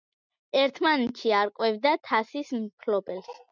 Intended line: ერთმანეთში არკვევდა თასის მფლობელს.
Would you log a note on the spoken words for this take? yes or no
no